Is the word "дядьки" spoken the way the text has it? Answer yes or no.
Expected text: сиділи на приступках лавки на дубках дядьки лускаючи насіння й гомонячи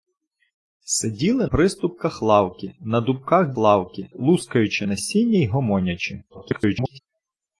no